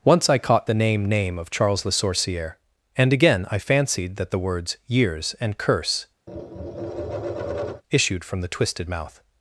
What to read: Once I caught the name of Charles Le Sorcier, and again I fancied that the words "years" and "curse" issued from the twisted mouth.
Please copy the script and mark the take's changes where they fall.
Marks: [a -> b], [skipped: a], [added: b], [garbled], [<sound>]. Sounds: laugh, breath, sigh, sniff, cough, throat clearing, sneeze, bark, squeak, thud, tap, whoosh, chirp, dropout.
Once I caught the name [added: name] of Charles Le Sorcier, and again I fancied that the words "years" and "curse" [tap] issued from the twisted mouth.